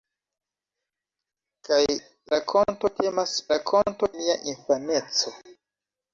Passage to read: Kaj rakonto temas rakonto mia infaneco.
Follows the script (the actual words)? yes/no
yes